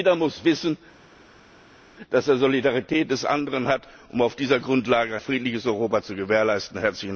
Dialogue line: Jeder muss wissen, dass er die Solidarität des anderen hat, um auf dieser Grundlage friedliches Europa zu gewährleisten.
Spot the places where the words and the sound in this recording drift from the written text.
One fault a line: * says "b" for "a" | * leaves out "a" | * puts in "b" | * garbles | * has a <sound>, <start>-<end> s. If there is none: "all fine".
all fine